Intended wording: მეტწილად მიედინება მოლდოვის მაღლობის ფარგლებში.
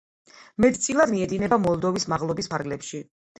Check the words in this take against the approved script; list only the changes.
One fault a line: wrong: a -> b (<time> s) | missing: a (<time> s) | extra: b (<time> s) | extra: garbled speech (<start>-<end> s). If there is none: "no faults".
no faults